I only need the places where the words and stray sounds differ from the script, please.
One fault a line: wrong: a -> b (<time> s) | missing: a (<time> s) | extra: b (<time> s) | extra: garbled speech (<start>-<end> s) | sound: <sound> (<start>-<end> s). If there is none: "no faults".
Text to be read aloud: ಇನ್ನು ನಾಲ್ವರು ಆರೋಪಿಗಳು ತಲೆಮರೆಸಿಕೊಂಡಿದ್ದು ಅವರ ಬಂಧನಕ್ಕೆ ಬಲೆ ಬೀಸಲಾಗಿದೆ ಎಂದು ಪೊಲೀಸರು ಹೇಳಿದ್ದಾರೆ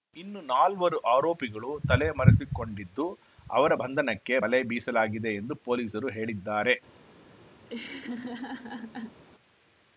sound: laugh (7.7-9.2 s)